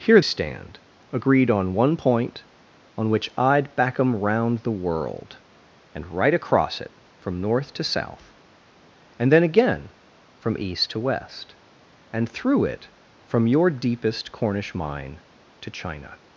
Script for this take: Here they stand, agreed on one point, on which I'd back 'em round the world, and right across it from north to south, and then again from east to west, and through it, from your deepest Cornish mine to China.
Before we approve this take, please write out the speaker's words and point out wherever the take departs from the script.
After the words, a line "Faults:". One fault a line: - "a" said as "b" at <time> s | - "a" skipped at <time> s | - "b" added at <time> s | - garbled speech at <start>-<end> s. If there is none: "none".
Here stand, agreed on one point, on which I'd back 'em round the world, and right across it from north to south, and then again from east to west, and through it, from your deepest Cornish mine to China.
Faults:
- "they" skipped at 0.2 s